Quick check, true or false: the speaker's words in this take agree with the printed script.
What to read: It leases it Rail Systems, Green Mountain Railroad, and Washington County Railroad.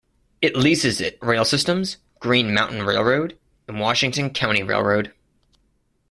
true